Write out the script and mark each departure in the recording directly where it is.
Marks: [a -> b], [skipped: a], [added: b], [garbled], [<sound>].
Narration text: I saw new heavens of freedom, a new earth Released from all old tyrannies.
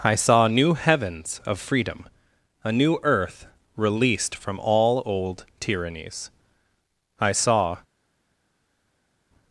I saw new heavens of freedom, a new earth Released from all old tyrannies. [added: I saw]